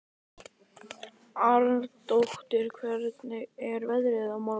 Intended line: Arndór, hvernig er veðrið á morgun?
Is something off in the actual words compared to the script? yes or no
no